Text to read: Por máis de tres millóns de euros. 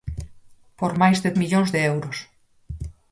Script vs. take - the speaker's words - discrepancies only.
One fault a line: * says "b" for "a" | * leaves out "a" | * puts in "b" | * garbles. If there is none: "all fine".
* leaves out "tres"